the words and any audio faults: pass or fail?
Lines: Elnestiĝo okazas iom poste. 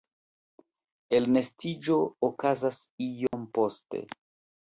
fail